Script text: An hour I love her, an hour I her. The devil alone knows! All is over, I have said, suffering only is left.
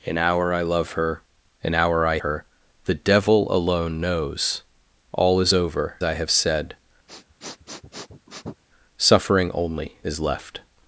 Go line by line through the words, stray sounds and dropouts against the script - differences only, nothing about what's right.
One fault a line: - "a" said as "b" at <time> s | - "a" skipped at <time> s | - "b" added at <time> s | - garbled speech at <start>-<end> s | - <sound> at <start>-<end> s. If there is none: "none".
- sniff at 7.1-8.6 s